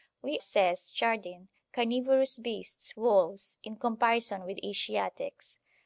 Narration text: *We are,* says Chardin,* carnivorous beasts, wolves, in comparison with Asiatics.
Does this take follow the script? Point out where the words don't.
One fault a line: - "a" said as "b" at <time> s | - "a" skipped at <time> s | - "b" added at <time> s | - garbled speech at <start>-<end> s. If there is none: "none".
- "are" skipped at 0.4 s